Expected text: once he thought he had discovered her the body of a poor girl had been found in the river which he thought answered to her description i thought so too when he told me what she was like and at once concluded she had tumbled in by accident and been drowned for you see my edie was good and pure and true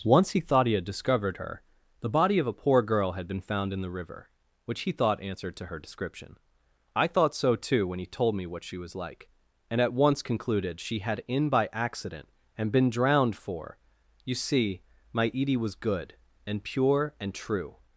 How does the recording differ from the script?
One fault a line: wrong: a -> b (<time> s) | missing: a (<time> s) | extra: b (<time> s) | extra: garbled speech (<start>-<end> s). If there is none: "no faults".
missing: tumbled (11.2 s)